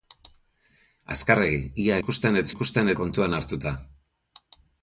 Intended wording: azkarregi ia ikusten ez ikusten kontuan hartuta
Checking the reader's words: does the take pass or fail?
pass